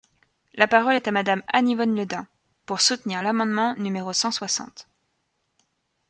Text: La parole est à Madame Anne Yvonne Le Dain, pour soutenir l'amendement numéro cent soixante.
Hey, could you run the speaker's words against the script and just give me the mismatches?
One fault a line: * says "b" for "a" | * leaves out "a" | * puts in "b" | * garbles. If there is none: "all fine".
all fine